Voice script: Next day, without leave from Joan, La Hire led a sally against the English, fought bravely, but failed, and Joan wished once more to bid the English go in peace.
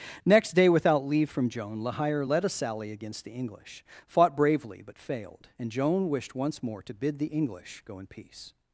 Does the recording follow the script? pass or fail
pass